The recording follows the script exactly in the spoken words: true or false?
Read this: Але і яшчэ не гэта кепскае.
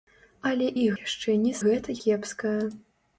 true